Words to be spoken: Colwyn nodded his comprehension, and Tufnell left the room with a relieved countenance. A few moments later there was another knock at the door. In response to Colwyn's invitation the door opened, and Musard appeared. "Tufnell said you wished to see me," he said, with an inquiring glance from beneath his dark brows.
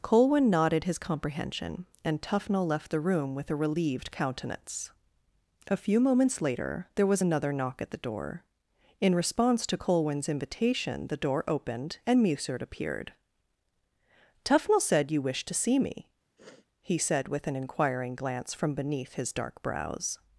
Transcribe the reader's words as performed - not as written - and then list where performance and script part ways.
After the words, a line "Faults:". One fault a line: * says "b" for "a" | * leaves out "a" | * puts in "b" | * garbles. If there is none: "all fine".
Colwyn nodded his comprehension, and Tufnell left the room with a relieved countenance. A few moments later there was another knock at the door. In response to Colwyn's invitation the door opened, and Musard appeared. "Tufnell said you wished to see me," he said, with an inquiring glance from beneath his dark brows.
Faults:
all fine